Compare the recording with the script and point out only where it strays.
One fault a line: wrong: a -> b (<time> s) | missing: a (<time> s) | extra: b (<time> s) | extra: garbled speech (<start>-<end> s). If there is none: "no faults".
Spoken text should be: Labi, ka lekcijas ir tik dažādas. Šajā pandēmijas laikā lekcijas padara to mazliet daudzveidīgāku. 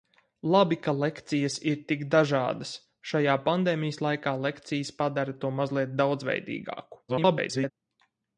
extra: garbled speech (7.1-7.7 s)